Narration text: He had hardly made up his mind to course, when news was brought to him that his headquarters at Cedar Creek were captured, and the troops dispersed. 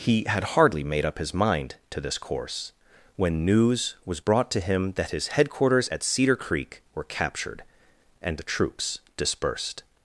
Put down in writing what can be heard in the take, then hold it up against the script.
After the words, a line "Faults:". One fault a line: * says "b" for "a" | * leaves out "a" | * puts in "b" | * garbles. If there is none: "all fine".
He had hardly made up his mind to this course, when news was brought to him that his headquarters at Cedar Creek were captured, and the troops dispersed.
Faults:
* puts in "this"